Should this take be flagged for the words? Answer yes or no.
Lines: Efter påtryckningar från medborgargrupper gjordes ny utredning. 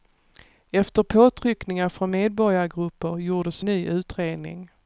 no